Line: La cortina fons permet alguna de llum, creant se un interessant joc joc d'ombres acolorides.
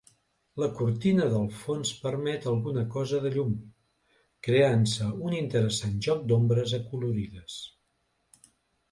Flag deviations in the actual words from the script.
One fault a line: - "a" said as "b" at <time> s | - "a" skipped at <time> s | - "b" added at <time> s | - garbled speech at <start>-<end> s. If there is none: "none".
- "del" added at 1.3 s
- "cosa" added at 3.0 s
- "joc" skipped at 6.2 s